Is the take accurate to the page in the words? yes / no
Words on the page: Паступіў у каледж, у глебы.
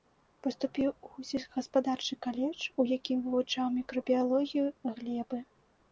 no